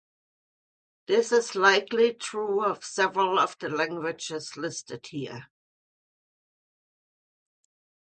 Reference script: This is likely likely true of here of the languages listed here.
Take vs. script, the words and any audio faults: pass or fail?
fail